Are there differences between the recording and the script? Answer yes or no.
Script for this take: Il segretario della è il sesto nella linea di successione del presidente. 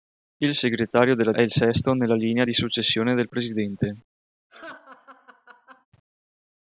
no